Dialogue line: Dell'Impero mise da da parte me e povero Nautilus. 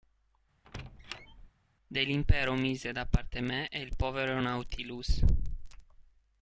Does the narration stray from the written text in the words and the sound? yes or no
yes